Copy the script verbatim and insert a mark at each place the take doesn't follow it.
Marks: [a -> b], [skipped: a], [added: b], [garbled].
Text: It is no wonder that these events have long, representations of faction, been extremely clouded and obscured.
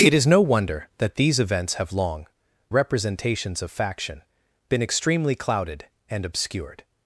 It is no wonder that these events have long, representations of faction, been extremely clouded and obscured.